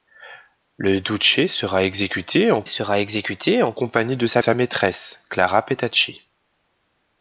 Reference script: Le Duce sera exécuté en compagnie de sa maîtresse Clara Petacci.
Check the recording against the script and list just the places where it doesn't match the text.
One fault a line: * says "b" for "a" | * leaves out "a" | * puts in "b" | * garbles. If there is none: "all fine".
* puts in "sera exécuté en"
* puts in "sa"